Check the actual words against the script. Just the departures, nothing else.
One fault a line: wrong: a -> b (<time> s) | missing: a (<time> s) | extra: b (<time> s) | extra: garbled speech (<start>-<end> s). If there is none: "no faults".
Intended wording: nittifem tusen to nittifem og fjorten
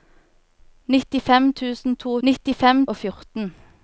no faults